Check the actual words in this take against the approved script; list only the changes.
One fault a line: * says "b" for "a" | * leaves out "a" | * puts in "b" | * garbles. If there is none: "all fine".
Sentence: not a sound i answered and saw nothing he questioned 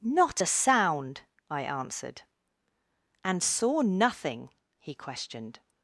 all fine